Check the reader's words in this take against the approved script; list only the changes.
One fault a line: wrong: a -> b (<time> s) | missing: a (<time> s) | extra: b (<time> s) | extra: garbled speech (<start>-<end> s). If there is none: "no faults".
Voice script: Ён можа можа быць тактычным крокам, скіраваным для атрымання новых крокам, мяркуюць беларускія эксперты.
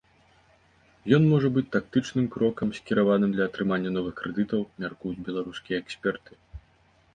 missing: можа (1.5 s)
wrong: крокам -> крэдытаў (4.2 s)